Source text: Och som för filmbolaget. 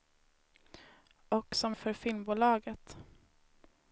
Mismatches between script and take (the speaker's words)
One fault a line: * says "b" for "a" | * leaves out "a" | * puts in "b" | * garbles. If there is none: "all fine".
all fine